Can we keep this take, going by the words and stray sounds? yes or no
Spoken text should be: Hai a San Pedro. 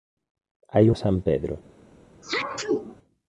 no